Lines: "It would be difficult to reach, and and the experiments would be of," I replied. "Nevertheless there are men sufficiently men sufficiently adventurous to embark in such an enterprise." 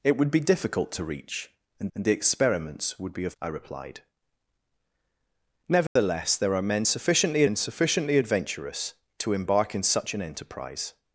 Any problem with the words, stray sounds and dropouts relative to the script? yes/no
yes